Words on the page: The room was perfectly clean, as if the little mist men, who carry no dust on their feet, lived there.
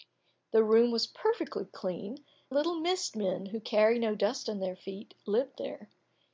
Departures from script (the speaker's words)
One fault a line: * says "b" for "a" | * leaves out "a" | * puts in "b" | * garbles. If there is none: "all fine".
* leaves out "as if the"